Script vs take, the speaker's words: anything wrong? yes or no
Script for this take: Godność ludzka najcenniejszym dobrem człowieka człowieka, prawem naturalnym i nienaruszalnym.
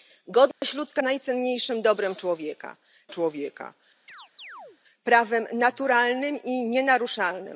no